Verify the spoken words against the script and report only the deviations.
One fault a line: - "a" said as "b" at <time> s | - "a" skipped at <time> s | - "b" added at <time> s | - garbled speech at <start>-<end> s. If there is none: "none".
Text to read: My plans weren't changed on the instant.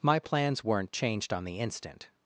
none